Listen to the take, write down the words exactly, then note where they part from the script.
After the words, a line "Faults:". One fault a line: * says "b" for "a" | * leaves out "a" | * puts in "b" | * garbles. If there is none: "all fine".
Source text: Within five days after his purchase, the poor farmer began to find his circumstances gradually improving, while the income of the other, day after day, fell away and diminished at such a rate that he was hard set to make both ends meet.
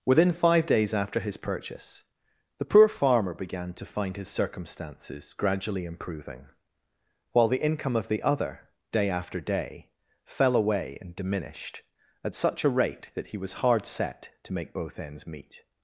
Within five days after his purchase, the poor farmer began to find his circumstances gradually improving, while the income of the other, day after day, fell away and diminished at such a rate that he was hard set to make both ends meet.
Faults:
all fine